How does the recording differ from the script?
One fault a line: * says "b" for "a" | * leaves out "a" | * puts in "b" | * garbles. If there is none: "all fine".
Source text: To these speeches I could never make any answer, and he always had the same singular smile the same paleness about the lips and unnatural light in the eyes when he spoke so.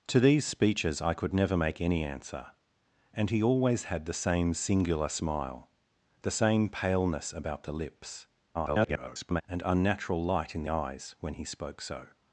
* garbles
* leaves out "the"